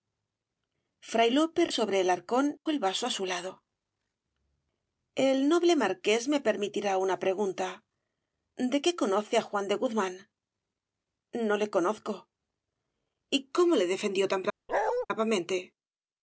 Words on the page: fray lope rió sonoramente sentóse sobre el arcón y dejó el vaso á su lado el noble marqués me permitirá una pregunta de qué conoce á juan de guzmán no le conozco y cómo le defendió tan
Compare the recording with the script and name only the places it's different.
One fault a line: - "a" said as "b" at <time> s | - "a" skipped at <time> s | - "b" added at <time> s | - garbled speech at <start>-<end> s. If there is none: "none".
- "rió sonoramente sentóse" skipped at 1.6 s
- "y dejó" skipped at 2.6 s